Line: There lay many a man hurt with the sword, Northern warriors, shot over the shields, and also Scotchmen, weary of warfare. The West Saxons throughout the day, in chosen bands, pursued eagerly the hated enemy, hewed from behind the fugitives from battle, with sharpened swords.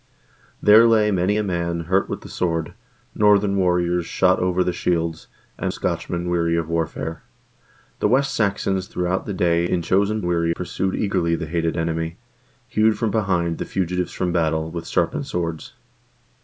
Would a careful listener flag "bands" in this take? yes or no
yes